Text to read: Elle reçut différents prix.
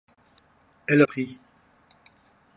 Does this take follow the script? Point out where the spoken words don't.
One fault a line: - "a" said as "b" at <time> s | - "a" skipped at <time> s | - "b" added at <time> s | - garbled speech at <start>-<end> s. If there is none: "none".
- "reçut différents" skipped at 1.0 s